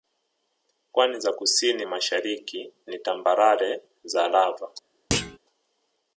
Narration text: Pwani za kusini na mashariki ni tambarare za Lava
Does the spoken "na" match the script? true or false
false